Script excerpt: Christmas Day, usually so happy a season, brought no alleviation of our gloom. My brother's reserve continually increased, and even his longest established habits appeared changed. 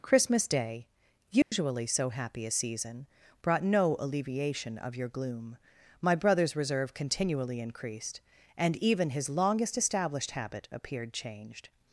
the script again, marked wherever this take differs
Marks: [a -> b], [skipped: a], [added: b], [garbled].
Christmas Day, usually so happy a season, brought no alleviation of [our -> your] gloom. My brother's reserve continually increased, and even his longest established [habits -> habit] appeared changed.